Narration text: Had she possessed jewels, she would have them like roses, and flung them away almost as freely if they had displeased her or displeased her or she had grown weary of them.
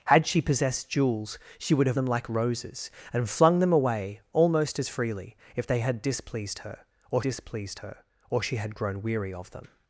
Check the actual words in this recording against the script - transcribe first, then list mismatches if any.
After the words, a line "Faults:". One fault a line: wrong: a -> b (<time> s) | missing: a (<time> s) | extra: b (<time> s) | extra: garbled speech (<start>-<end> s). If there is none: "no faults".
Had she possessed jewels, she would have them like roses, and flung them away almost as freely if they had displeased her or displeased her or she had grown weary of them.
Faults:
no faults